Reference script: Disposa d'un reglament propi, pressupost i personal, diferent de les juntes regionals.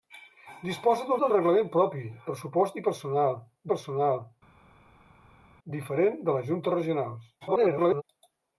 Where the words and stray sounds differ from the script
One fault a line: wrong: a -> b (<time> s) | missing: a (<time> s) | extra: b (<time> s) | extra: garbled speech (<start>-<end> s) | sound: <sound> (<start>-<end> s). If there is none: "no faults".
extra: d'un (1.2 s)
extra: personal (3.7 s)
extra: garbled speech (7.4-8.0 s)